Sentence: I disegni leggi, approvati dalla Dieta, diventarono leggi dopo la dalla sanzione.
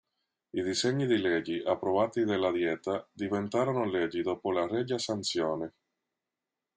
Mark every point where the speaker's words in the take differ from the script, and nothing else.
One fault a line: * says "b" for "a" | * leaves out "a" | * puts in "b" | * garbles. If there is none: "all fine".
* puts in "di"
* says "regia" for "dalla"